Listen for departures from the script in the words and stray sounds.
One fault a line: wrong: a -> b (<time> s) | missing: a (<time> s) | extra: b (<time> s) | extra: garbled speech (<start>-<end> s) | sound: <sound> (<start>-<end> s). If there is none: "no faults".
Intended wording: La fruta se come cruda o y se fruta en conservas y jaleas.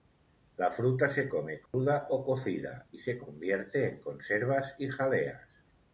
sound: dropout (1.7-1.7 s)
extra: cocida (2.2 s)
wrong: fruta -> convierte (3.2 s)